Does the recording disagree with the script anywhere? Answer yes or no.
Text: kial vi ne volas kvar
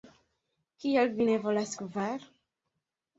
no